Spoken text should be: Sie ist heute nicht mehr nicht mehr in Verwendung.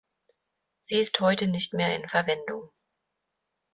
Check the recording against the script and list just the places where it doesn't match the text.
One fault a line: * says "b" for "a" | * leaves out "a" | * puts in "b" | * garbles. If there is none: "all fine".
* leaves out "nicht mehr"